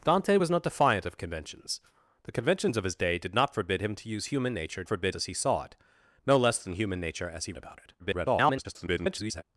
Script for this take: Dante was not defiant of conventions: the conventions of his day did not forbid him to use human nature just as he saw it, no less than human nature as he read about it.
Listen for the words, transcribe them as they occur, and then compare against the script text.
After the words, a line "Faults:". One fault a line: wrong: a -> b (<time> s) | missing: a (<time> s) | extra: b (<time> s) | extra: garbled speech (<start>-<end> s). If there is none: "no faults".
Dante was not defiant of conventions: the conventions of his day did not forbid him to use human nature forbid as he saw it, no less than human nature as he about it. [garbled]
Faults:
wrong: just -> forbid (4.9 s)
missing: read (7.5 s)
extra: garbled speech (8.0-9.4 s)